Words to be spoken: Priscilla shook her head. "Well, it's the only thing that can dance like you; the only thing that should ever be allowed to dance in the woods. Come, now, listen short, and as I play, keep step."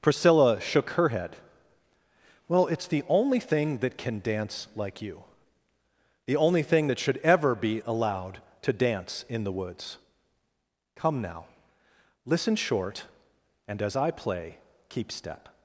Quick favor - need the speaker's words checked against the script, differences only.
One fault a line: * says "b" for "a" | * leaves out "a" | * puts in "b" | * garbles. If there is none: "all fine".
all fine